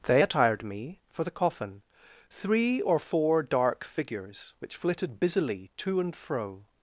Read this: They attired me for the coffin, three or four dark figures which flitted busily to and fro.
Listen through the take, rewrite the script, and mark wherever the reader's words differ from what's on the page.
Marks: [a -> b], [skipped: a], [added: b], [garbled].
They attired me for the coffin, three or four dark figures which flitted busily to and fro.